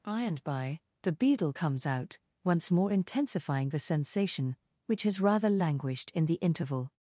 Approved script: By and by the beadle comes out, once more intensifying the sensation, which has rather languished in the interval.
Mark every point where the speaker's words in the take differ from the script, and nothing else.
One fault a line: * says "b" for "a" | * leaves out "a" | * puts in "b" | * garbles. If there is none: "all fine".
all fine